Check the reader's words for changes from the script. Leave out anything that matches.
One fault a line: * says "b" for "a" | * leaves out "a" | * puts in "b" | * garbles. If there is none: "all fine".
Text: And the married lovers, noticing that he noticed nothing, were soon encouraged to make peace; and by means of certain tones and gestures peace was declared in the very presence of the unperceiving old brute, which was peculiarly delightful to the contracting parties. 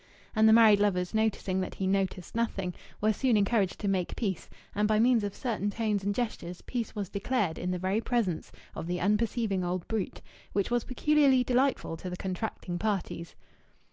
all fine